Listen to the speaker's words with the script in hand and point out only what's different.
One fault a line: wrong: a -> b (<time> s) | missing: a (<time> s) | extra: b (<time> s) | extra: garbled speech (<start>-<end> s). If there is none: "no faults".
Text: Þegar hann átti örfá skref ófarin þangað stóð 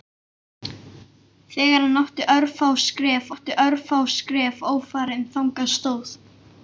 extra: átti örfá skref (3.3 s)